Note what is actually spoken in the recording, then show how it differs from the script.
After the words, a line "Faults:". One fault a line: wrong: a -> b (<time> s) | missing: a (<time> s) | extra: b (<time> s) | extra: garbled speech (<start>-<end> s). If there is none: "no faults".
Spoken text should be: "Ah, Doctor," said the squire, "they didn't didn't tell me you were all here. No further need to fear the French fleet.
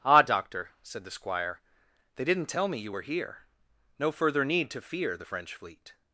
"Ah, Doctor," said the squire, "they didn't tell me you were here. No further need to fear the French fleet.
Faults:
missing: didn't (2.5 s)
missing: all (3.0 s)